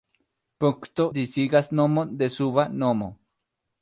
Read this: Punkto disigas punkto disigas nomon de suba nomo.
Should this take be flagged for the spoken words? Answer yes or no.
yes